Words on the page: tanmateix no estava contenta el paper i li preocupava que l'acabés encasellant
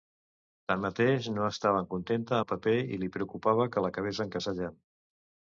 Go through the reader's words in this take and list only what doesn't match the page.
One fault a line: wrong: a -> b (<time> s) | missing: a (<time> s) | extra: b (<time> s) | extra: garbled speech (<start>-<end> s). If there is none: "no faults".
no faults